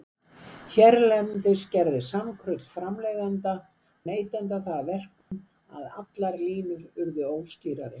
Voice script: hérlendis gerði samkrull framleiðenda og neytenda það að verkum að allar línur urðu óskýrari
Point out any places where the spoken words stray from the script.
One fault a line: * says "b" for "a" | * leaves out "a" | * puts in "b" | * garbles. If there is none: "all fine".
* leaves out "og"